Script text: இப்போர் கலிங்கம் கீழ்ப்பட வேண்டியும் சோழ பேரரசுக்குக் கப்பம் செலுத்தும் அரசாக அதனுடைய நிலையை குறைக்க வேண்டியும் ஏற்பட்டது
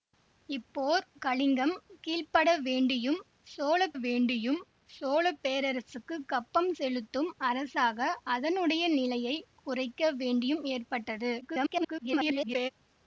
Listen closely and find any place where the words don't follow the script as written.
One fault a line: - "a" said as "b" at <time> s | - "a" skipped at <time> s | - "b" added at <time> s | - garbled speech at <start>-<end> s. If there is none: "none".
- "வேண்டியும் சோழ" added at 4.0 s
- garbled speech at 11.4-12.7 s